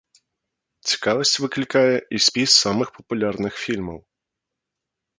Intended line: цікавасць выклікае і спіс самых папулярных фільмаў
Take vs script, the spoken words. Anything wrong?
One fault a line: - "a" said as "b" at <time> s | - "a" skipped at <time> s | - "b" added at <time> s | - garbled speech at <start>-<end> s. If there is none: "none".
none